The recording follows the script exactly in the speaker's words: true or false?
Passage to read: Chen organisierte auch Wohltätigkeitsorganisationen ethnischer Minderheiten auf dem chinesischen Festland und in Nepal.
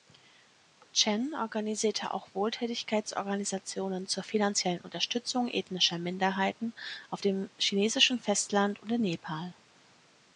false